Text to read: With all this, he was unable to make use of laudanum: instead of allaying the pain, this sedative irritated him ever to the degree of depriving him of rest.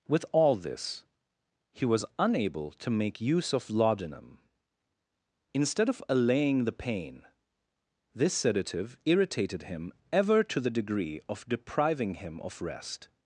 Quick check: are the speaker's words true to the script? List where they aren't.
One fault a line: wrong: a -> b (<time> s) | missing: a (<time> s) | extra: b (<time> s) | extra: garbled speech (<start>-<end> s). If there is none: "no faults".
no faults